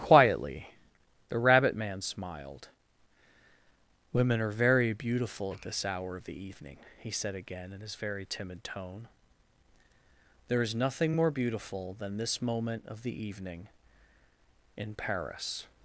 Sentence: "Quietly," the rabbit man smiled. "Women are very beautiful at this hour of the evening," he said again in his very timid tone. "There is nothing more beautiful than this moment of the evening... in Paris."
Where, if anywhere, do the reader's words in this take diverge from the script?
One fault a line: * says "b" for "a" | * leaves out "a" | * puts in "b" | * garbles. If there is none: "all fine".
all fine